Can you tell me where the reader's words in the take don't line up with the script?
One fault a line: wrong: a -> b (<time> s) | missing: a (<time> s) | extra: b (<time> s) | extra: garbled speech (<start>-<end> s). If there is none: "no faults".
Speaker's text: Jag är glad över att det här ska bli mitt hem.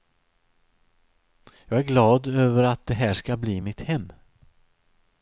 no faults